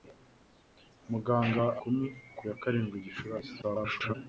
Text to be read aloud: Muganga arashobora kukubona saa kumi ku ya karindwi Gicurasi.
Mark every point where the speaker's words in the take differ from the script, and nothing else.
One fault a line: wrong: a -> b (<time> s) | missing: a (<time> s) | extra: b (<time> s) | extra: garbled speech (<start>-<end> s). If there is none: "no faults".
missing: arashobora kukubona saa (1.6 s)
extra: garbled speech (3.6-4.1 s)